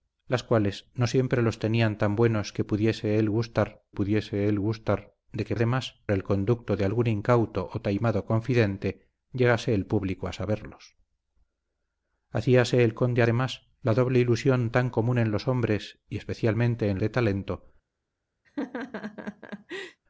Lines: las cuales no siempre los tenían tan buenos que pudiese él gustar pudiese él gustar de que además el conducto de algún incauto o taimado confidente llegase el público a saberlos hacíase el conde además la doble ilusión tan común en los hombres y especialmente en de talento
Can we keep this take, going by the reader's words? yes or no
yes